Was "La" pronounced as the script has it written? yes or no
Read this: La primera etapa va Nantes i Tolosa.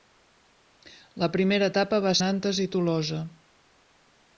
yes